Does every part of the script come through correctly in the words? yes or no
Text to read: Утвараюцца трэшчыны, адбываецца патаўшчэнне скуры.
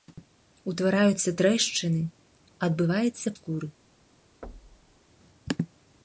no